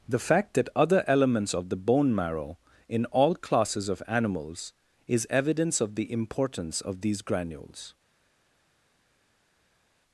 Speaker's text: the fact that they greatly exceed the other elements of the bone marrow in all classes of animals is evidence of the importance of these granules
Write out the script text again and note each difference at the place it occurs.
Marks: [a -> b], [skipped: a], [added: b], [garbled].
the fact that [skipped: they greatly exceed the] other elements of the bone marrow in all classes of animals is evidence of the importance of these granules